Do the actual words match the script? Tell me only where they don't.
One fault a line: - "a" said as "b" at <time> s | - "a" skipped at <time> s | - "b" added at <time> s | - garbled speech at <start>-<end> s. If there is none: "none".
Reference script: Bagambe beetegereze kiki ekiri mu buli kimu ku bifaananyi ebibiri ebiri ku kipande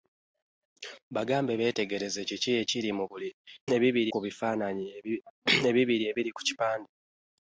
- "kimu" said as "ebibiri" at 3.7 s